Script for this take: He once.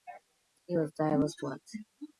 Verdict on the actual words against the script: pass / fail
fail